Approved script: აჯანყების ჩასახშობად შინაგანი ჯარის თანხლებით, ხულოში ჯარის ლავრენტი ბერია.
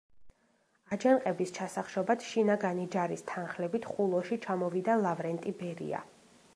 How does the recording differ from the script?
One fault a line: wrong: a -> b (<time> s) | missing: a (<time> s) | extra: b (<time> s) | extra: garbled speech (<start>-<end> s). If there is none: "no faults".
wrong: ჯარის -> ჩამოვიდა (4.5 s)